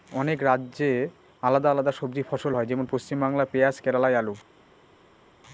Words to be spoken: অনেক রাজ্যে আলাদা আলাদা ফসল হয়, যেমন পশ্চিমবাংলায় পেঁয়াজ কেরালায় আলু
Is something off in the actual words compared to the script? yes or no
yes